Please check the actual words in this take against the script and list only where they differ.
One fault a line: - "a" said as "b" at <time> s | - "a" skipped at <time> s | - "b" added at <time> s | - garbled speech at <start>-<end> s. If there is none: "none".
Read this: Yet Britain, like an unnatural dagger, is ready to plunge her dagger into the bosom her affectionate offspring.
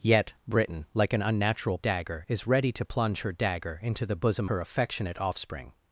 none